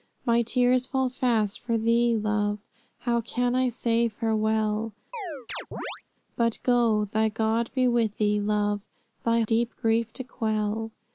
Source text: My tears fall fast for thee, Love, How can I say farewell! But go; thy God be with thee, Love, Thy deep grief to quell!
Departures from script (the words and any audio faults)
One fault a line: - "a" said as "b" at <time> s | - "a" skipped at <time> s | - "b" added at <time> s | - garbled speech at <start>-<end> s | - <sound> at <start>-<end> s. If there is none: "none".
- chirp at 5.1-6.0 s